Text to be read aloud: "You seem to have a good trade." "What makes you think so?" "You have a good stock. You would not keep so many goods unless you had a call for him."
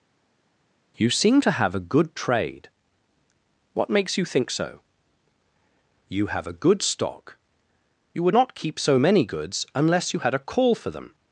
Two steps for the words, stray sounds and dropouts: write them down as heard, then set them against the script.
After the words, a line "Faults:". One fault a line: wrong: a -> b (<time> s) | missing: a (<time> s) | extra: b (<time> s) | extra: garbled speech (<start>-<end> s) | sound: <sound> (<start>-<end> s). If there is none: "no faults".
"You seem to have a good trade." "What makes you think so?" "You have a good stock. You would not keep so many goods unless you had a call for them."
Faults:
wrong: him -> them (10.9 s)